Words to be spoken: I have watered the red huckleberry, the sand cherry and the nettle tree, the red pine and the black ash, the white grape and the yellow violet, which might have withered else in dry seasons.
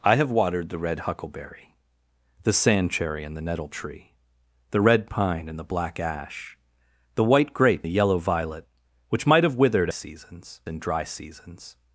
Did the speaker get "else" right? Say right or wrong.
wrong